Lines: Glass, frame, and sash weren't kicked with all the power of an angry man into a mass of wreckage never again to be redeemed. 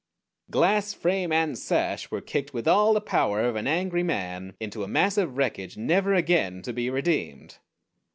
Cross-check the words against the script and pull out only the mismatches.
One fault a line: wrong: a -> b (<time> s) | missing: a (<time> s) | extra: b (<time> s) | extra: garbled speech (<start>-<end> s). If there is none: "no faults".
wrong: weren't -> were (2.1 s)